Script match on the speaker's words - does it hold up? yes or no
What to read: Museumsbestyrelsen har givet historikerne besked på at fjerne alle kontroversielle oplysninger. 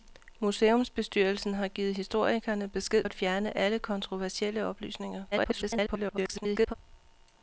no